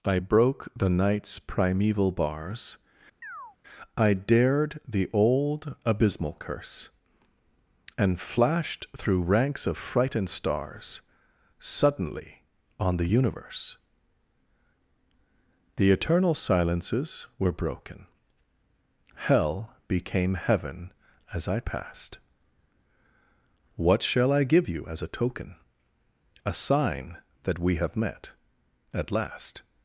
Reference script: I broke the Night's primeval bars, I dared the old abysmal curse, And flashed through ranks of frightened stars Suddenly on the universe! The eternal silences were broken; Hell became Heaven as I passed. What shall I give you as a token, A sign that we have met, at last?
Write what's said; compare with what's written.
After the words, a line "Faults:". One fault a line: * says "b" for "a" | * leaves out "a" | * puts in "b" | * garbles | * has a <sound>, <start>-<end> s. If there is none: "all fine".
I broke the Night's primeval bars, I dared the old abysmal curse, And flashed through ranks of frightened stars Suddenly on the universe! The eternal silences were broken; Hell became Heaven as I passed. What shall I give you as a token, A sign that we have met, at last?
Faults:
* has a chirp, 3.2-3.6 s